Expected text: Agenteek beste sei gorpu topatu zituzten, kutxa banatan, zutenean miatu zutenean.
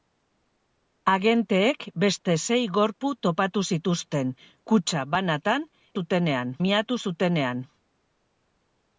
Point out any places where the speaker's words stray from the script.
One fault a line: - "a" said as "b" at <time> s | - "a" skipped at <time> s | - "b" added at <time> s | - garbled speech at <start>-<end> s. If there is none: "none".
none